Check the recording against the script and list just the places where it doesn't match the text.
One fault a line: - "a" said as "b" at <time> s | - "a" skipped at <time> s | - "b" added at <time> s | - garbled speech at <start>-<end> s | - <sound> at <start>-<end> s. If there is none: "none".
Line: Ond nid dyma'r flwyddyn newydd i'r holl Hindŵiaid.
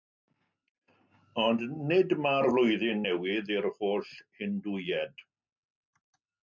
none